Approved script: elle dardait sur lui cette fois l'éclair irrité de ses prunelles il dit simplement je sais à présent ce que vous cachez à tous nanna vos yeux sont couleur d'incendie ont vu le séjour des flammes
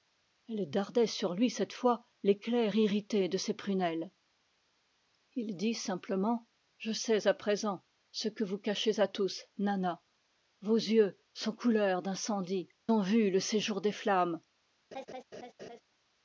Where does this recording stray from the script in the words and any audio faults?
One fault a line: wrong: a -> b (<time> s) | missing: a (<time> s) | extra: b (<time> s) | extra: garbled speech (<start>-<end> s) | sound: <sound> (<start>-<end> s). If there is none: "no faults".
sound: laugh (14.9-15.8 s)